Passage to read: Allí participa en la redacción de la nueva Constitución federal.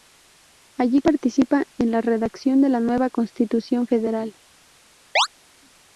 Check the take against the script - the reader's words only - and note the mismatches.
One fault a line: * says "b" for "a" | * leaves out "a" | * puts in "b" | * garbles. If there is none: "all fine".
all fine